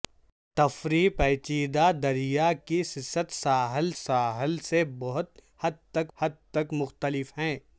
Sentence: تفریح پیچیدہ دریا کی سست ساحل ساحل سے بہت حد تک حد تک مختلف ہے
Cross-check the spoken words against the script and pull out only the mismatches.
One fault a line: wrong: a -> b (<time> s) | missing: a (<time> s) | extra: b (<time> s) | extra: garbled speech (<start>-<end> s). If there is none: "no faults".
no faults